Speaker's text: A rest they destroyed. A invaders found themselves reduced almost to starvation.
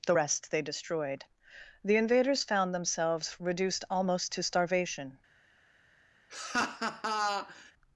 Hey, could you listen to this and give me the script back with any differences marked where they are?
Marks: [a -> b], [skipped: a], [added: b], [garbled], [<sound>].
[A -> The] rest they destroyed. [A -> The] invaders found themselves reduced almost to starvation. [laugh]